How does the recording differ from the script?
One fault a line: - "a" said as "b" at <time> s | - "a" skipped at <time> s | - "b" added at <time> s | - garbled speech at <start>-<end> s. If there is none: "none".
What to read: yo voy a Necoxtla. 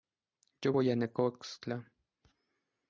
none